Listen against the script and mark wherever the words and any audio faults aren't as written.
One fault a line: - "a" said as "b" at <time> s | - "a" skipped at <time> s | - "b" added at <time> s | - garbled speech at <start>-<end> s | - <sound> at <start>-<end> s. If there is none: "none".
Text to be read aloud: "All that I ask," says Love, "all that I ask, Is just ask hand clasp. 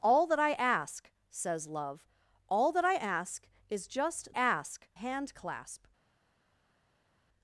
none